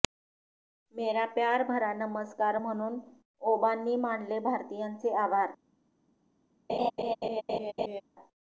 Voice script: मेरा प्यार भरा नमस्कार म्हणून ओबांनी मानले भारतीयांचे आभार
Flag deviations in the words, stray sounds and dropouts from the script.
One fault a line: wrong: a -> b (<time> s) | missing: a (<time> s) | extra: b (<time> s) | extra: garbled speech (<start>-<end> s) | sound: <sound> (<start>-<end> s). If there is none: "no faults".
sound: laugh (6.7-8.0 s)